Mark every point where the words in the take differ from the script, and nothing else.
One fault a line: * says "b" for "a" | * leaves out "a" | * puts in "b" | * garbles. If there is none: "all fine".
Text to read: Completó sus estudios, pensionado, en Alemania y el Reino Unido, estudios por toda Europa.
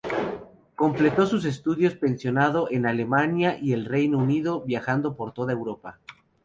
* says "viajando" for "estudios"